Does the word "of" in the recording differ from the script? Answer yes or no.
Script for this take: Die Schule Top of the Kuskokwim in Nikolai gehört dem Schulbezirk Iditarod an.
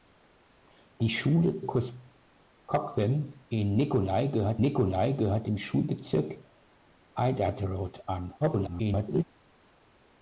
yes